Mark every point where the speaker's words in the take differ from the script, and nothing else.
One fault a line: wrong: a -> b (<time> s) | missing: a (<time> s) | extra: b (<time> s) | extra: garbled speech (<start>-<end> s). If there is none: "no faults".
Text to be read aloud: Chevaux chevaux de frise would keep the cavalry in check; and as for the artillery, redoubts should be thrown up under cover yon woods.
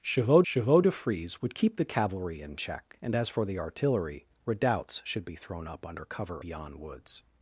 no faults